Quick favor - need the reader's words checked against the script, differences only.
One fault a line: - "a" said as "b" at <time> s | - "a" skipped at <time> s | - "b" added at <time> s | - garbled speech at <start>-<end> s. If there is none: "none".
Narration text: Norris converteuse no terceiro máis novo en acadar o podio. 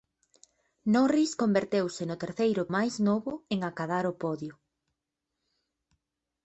none